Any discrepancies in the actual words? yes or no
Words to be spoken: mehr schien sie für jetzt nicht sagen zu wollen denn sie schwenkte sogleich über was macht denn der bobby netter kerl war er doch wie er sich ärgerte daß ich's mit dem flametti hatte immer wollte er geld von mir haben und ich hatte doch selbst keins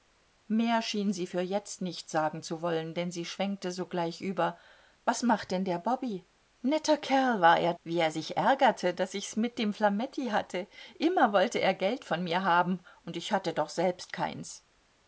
yes